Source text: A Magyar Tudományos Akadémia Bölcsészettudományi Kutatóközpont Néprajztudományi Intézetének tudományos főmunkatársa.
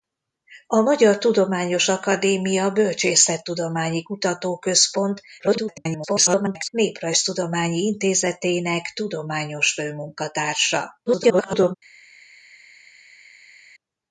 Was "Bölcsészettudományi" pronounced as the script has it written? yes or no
yes